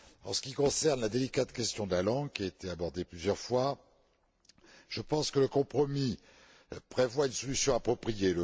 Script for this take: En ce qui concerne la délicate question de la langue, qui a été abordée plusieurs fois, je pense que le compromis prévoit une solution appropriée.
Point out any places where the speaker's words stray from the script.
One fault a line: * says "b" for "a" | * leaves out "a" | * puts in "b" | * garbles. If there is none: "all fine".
all fine